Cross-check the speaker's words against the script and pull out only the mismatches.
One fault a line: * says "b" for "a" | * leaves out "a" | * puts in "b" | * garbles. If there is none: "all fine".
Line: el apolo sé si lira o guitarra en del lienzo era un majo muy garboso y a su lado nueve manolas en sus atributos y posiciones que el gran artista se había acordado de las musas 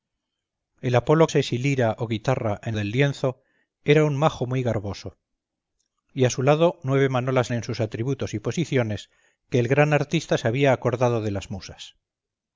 all fine